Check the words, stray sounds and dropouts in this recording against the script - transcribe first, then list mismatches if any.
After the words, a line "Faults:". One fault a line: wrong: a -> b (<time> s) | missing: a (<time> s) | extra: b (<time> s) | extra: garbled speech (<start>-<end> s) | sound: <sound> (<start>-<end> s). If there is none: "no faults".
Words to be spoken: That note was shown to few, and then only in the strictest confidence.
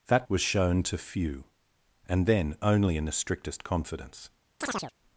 That was shown to few, and then only in the strictest confidence.
Faults:
missing: note (0.3 s)
sound: chirp (4.6-4.9 s)